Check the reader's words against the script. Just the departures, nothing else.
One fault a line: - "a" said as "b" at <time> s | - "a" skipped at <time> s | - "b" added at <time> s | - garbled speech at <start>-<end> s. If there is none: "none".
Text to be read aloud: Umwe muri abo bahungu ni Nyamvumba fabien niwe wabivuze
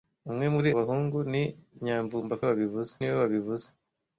- "abo" skipped at 0.7 s
- "fabien" said as "wabivuze" at 2.5 s